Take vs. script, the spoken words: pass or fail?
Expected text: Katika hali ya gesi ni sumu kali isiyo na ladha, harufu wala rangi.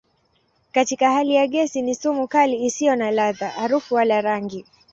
pass